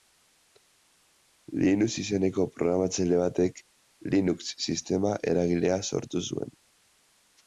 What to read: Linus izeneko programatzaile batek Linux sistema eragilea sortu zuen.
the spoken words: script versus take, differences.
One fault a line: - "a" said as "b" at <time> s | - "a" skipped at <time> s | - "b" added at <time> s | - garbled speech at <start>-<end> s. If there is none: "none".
none